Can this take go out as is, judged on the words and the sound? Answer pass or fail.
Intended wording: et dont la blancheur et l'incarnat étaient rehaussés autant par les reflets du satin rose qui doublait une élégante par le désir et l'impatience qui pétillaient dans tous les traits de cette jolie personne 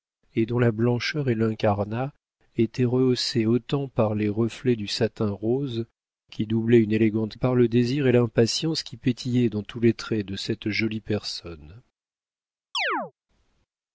fail